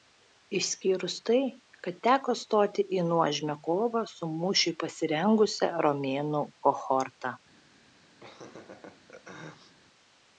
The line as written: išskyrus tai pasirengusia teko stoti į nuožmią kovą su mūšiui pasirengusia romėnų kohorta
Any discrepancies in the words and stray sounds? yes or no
yes